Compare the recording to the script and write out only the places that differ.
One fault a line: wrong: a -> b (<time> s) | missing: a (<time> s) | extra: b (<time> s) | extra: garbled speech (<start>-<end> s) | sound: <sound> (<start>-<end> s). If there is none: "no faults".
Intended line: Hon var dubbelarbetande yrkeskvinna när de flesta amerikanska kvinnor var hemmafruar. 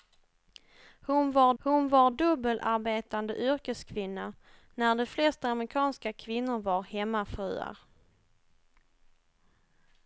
extra: hon var (1.6 s)